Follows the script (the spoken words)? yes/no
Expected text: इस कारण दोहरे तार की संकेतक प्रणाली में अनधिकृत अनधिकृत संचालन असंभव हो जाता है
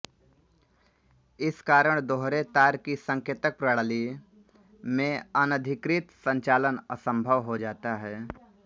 no